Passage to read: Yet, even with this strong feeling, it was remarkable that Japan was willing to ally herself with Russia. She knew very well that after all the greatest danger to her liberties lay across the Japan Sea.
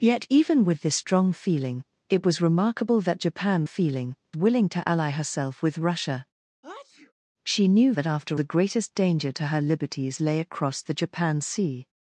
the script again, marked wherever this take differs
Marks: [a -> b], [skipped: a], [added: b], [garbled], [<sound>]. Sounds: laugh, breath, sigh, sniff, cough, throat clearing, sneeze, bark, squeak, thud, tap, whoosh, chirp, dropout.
Yet, even with this strong feeling, it was remarkable that Japan [was -> feeling] willing to ally herself with Russia. [sneeze] She knew [skipped: very well] that after [skipped: all] the greatest danger to her liberties lay across the Japan Sea.